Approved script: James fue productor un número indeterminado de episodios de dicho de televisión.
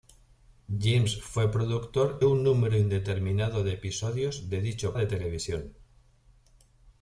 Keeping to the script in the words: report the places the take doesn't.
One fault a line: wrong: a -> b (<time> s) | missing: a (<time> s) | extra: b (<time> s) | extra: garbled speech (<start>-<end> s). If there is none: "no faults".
no faults